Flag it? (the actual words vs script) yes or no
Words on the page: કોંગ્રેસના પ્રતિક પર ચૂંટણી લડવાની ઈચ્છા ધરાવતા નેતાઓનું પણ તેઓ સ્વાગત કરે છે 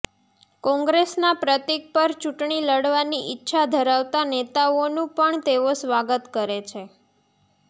no